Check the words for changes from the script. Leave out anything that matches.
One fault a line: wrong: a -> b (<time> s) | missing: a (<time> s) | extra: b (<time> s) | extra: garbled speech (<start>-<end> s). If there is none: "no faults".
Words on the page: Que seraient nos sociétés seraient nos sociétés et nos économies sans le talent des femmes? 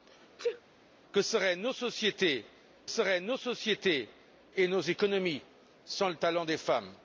no faults